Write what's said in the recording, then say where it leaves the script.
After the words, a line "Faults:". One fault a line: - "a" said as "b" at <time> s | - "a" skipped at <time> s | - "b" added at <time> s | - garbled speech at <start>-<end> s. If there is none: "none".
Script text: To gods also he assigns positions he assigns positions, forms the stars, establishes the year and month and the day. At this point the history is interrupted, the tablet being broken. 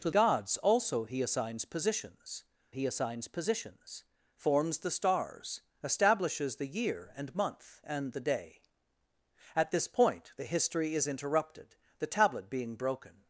To gods also he assigns positions he assigns positions, forms the stars, establishes the year and month and the day. At this point the history is interrupted, the tablet being broken.
Faults:
none